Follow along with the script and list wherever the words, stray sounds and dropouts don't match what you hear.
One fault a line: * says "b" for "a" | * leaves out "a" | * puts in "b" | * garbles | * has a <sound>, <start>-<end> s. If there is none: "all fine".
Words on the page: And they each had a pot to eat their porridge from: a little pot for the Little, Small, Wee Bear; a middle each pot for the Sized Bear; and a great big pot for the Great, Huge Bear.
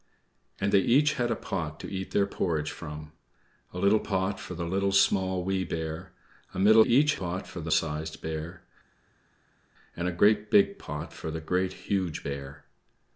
all fine